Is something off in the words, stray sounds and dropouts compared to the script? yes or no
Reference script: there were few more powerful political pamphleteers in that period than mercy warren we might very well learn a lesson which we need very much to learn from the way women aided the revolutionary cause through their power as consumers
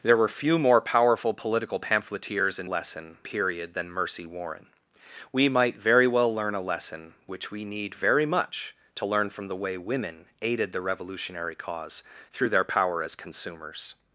yes